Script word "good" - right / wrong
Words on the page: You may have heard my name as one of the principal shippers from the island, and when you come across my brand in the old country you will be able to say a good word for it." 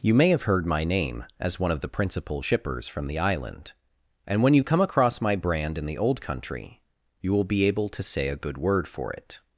right